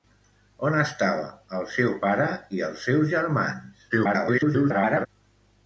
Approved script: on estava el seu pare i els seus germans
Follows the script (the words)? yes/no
no